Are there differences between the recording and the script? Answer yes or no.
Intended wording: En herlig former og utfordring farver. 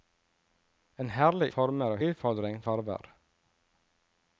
no